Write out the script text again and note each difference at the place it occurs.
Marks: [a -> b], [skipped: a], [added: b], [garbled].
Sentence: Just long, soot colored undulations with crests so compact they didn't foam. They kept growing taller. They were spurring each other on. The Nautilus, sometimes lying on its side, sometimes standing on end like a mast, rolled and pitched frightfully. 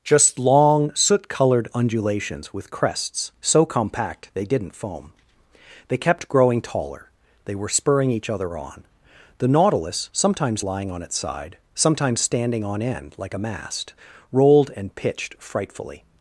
Just long, soot colored undulations with crests so compact they didn't foam. They kept growing taller. They were spurring each other on. The Nautilus, sometimes lying on its side, sometimes standing on end like a mast, rolled and pitched frightfully.